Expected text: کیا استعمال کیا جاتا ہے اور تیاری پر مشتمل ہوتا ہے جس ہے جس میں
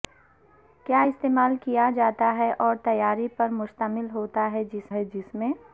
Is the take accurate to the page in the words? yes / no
yes